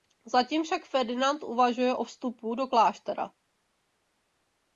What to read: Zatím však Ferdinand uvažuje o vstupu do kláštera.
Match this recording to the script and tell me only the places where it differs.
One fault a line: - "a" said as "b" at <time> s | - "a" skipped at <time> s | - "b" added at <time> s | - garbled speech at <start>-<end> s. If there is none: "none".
none